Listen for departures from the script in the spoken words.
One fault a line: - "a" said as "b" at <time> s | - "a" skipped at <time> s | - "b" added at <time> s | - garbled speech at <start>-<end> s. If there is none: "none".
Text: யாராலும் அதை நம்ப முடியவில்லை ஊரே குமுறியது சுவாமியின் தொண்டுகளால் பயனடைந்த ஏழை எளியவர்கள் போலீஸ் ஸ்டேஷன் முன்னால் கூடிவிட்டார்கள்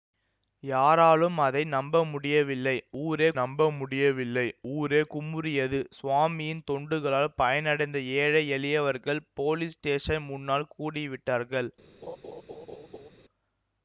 - "நம்ப முடியவில்லை ஊரே" added at 3.4 s